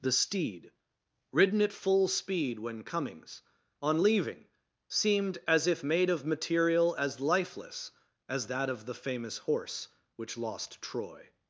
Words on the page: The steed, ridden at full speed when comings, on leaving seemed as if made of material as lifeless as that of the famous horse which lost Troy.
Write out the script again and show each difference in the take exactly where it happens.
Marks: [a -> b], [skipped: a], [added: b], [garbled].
The steed, ridden at full speed when comings, on leaving seemed as if made of material as lifeless as that of the famous horse which lost Troy.